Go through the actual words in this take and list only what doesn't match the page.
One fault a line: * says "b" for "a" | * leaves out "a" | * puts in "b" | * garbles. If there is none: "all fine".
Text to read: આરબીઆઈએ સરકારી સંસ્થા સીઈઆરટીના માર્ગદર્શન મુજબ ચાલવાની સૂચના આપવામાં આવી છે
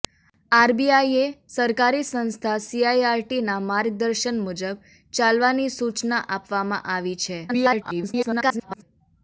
* garbles